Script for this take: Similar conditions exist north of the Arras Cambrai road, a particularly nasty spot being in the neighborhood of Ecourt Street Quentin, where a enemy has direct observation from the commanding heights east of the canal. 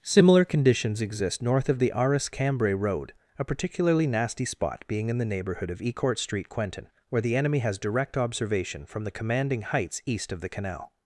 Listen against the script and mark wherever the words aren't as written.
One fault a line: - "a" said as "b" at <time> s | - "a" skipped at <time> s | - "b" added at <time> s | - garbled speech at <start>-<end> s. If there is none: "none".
- "a" said as "the" at 7.2 s